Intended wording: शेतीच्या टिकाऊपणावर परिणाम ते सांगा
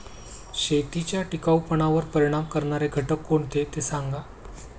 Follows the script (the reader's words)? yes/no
no